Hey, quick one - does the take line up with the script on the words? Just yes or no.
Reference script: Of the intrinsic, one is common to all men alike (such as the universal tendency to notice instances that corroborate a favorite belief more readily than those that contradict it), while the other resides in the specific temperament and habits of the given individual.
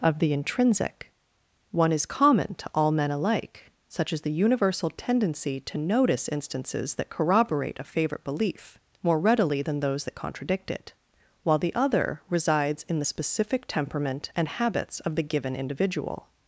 yes